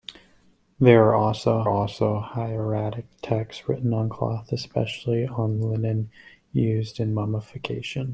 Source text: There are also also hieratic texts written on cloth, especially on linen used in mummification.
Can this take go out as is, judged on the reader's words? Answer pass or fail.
pass